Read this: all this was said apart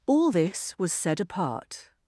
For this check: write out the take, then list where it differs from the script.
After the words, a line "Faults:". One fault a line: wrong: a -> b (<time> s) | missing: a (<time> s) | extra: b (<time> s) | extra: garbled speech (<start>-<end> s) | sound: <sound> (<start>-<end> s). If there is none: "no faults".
all this was said apart
Faults:
no faults